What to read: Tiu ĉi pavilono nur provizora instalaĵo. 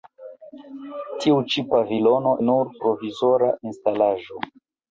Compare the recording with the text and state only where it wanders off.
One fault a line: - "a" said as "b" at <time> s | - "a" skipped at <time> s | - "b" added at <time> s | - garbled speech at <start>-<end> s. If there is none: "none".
none